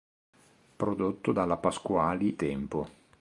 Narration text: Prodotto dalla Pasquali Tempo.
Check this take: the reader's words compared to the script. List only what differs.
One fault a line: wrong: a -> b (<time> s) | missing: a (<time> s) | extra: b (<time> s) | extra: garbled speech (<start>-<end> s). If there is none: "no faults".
no faults